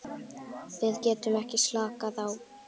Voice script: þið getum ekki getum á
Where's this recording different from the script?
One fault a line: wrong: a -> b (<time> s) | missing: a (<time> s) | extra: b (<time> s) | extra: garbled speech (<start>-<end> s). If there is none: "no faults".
wrong: þið -> við (0.8 s)
wrong: getum -> slakað (1.6 s)